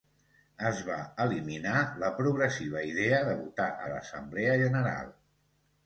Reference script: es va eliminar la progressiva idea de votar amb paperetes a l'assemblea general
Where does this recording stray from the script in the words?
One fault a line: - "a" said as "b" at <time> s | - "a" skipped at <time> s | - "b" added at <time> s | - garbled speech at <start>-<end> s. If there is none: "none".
- "amb paperetes" skipped at 3.7 s